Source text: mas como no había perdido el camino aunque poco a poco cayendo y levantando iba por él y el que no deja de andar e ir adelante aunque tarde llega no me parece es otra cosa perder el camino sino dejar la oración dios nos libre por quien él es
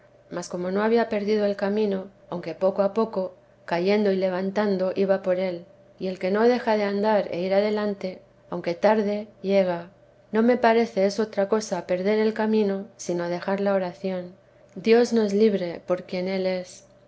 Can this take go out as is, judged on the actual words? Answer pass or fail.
pass